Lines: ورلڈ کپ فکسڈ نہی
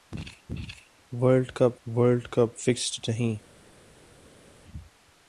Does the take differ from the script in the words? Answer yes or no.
yes